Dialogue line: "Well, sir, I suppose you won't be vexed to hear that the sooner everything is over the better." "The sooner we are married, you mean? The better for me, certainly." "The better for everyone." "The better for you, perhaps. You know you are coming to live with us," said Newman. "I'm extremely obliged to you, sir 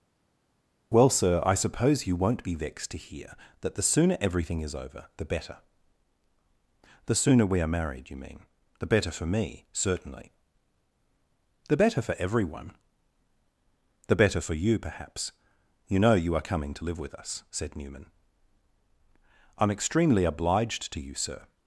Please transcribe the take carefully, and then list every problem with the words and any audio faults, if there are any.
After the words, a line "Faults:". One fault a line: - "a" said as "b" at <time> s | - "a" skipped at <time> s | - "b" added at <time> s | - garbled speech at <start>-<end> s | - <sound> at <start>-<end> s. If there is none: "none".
"Well, sir, I suppose you won't be vexed to hear that the sooner everything is over the better." "The sooner we are married, you mean? The better for me, certainly." "The better for everyone." "The better for you, perhaps. You know you are coming to live with us," said Newman. "I'm extremely obliged to you, sir
Faults:
none